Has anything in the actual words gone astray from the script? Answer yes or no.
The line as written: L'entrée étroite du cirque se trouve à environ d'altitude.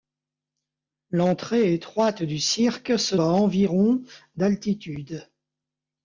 yes